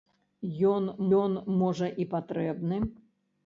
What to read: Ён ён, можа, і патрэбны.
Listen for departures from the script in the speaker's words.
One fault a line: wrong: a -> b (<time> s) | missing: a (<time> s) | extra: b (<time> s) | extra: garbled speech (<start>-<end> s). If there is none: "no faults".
no faults